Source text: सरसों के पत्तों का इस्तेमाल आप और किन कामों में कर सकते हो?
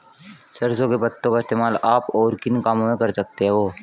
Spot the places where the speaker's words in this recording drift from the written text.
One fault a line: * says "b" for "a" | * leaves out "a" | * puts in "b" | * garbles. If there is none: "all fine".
all fine